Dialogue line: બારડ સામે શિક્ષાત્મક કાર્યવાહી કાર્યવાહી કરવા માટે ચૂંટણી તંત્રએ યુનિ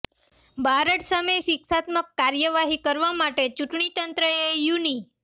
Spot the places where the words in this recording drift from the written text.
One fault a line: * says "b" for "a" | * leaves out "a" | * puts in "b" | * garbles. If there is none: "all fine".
* leaves out "કાર્યવાહી"